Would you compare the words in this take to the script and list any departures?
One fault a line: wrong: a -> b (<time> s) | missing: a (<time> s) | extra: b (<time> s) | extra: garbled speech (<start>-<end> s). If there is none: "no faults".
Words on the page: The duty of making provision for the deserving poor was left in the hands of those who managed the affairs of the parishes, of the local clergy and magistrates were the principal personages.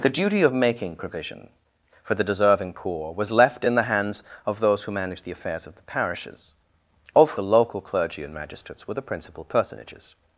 no faults